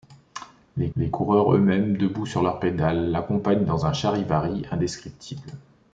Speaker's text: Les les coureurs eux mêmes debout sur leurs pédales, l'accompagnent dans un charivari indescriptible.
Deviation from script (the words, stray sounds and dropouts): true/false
false